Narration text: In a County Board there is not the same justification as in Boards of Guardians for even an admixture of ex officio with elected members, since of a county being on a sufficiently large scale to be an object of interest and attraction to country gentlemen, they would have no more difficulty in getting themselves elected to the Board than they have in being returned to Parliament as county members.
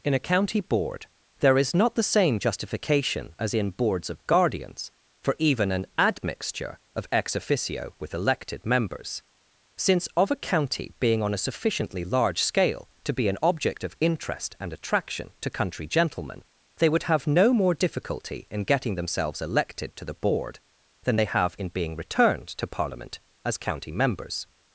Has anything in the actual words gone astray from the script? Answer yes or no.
no